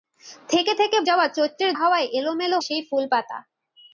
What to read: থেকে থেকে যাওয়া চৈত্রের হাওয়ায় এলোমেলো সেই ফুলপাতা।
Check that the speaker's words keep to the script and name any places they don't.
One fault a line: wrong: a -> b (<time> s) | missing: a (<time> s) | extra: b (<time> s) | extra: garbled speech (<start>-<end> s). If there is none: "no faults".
no faults